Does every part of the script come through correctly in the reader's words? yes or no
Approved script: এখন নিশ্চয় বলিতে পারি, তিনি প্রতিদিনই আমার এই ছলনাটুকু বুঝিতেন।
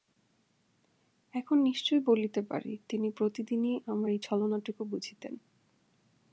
yes